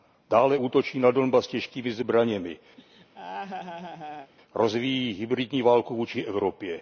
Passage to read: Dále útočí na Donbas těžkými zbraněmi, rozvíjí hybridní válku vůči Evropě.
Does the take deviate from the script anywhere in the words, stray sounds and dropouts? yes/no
yes